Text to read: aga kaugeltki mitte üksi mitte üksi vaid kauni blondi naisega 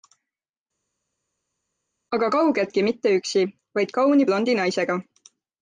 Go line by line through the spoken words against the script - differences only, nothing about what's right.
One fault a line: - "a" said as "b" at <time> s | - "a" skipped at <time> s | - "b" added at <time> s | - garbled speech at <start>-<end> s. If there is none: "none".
- "mitte üksi" skipped at 3.5 s